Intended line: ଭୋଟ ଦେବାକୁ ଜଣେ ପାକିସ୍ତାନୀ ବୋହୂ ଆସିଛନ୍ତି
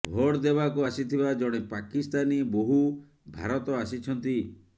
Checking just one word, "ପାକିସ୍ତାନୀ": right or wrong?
right